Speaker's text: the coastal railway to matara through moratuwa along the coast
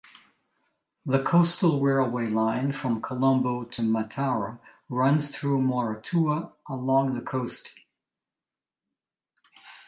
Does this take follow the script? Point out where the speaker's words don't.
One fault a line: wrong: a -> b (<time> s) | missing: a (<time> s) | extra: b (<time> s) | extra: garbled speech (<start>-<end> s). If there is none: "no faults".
extra: line from colombo (2.3 s)
extra: runs (4.9 s)